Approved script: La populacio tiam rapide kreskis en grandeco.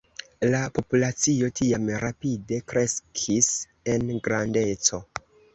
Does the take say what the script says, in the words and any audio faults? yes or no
yes